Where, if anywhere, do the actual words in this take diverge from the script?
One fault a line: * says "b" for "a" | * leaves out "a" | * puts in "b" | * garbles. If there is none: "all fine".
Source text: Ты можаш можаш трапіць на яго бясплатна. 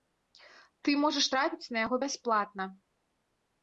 * leaves out "можаш"